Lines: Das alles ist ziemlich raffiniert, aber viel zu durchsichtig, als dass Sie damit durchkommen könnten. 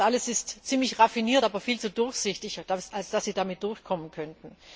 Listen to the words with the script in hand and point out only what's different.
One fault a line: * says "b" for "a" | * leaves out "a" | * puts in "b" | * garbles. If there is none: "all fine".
all fine